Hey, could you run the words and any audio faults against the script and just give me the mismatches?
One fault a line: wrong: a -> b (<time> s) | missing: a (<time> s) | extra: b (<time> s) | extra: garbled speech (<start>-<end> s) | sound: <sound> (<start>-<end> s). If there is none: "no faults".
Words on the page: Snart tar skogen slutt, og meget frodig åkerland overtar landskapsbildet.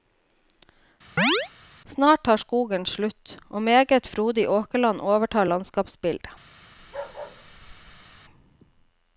sound: chirp (1.2-1.5 s)
sound: bark (6.8-8.2 s)